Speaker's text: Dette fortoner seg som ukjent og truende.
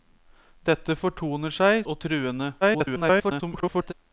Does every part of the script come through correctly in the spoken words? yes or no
no